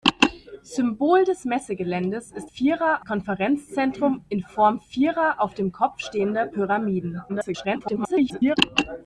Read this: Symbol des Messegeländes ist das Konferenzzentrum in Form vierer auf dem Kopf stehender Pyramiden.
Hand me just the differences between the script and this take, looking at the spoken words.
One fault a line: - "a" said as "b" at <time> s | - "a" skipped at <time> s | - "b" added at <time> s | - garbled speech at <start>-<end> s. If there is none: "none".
- "das" said as "vierer" at 2.4 s
- garbled speech at 7.3-8.6 s